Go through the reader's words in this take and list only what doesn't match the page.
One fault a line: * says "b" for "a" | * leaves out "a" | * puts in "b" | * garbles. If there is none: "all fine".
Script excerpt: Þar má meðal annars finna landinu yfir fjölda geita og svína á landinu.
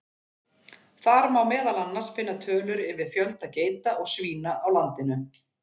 * says "tölur" for "landinu"